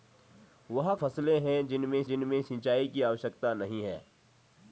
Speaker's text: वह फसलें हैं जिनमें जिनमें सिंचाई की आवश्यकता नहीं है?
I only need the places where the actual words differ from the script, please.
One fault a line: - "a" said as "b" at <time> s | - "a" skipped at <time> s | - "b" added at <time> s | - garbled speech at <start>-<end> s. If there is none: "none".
none